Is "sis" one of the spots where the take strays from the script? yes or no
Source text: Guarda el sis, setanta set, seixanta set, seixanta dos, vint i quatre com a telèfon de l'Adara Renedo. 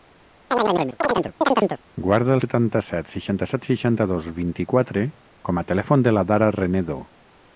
yes